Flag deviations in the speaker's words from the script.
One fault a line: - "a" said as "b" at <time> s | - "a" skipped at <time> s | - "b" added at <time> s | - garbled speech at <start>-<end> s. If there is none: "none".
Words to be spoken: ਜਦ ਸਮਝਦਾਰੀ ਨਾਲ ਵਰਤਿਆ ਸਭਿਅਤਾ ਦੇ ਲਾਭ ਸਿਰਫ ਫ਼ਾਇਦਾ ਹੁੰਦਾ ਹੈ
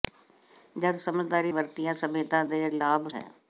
- "ਨਾਲ" skipped at 1.5 s
- "ਸਿਰਫ ਫ਼ਾਇਦਾ ਹੁੰਦਾ" skipped at 3.1 s